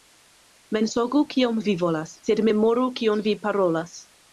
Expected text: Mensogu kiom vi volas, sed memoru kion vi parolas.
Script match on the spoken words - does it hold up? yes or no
yes